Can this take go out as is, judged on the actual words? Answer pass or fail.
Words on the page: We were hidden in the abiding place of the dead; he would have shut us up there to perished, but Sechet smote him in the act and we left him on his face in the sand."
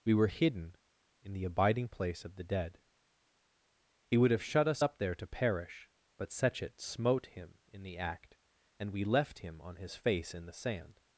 fail